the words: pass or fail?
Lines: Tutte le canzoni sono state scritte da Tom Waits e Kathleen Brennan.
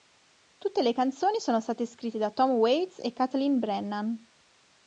pass